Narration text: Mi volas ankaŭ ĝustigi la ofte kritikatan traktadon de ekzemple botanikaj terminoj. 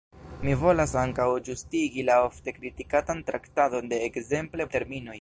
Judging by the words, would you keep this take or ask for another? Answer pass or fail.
fail